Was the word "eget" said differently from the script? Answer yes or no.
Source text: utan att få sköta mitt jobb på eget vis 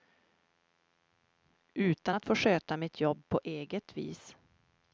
no